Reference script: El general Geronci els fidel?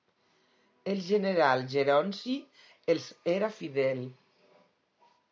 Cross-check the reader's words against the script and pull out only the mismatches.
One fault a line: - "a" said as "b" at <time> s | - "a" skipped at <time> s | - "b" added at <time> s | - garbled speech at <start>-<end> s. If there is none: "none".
- "era" added at 3.4 s